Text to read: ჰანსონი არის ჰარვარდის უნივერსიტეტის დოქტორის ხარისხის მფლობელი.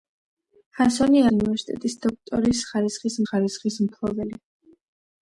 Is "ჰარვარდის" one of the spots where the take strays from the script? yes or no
yes